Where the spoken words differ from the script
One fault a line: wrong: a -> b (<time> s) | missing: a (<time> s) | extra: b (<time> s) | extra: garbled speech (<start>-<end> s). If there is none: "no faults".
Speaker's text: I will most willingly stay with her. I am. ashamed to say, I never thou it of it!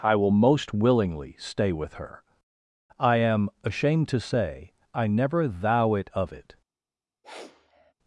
no faults